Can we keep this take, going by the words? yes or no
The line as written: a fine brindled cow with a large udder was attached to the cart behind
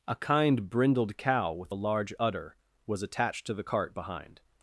no